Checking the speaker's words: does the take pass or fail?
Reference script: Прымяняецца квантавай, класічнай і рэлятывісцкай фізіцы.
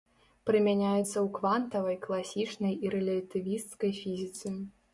fail